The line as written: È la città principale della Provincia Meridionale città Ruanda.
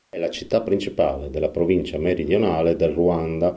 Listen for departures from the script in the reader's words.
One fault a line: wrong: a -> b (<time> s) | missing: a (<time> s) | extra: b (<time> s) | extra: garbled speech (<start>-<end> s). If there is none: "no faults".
wrong: città -> del (2.7 s)